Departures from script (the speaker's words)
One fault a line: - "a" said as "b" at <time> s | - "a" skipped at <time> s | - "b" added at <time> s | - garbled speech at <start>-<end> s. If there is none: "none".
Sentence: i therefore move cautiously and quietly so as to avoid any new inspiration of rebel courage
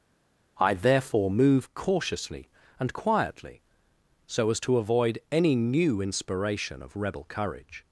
none